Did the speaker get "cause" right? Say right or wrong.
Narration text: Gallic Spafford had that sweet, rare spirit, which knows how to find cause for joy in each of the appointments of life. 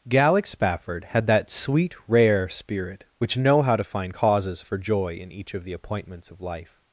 wrong